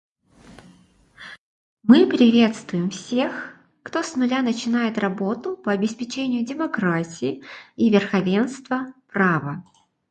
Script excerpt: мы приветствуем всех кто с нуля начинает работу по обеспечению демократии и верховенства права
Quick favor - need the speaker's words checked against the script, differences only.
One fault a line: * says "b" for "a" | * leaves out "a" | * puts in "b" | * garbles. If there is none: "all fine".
all fine